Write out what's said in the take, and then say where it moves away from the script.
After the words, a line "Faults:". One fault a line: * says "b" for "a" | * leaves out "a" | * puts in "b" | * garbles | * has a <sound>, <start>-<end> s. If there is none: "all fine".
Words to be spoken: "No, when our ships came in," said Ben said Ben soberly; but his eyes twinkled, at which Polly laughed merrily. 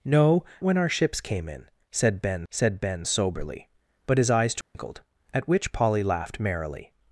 "No, when our ships came in," said Ben said Ben soberly; but his eyes twinkled, at which Polly laughed merrily.
Faults:
* has a dropout, 4.6-4.7 s